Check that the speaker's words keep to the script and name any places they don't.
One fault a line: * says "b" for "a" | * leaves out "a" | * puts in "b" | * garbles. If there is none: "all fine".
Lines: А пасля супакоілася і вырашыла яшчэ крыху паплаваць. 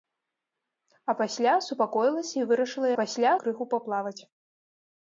* says "пасля" for "яшчэ"